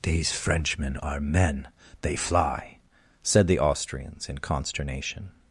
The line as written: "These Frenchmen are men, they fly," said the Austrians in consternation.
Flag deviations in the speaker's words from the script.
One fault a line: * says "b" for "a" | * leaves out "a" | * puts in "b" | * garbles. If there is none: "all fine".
all fine